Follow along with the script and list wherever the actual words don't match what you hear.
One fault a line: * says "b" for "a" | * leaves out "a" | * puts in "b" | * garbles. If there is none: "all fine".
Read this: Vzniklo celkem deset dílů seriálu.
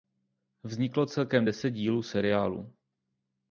all fine